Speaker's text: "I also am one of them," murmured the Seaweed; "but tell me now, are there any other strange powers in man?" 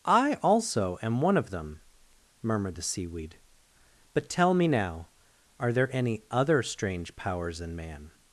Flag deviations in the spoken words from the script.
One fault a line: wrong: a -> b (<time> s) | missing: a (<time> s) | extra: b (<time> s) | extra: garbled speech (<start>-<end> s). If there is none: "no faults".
no faults